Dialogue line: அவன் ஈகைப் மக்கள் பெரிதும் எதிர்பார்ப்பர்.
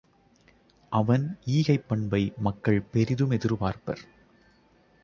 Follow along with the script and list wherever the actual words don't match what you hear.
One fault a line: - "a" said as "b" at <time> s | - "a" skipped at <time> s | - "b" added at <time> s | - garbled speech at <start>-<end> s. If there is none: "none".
- "பண்பை" added at 1.9 s